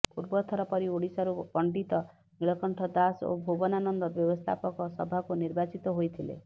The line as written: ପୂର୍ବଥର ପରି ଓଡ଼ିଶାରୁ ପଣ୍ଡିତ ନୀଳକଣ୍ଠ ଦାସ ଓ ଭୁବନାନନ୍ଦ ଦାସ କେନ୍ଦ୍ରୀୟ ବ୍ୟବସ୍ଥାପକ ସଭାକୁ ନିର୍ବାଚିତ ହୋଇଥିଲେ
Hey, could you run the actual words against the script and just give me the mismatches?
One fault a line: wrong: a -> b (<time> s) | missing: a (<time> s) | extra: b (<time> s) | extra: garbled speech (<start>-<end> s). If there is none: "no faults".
missing: ଦାସ କେନ୍ଦ୍ରୀୟ (4.1 s)